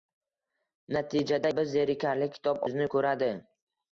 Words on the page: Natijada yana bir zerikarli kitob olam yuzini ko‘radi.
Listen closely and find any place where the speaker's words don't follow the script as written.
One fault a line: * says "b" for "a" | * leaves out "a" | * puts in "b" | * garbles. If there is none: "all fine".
* leaves out "yana"
* leaves out "olam"